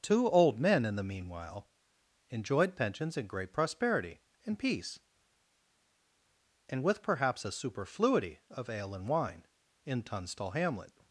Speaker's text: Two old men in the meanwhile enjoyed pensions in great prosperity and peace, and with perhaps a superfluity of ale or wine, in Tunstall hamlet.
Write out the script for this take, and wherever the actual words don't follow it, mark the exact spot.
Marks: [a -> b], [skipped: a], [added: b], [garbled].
Two old men in the meanwhile enjoyed pensions in great prosperity and peace, and with perhaps a superfluity of ale [or -> and] wine, in Tunstall hamlet.